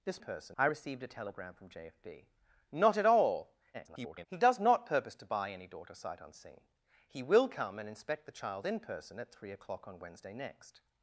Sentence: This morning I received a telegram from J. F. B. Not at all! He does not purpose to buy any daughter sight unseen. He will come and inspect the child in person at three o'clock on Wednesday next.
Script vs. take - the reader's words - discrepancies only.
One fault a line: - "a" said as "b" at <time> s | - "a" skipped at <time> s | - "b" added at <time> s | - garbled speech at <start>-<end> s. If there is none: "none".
- "morning" said as "person" at 0.2 s
- garbled speech at 3.7-4.3 s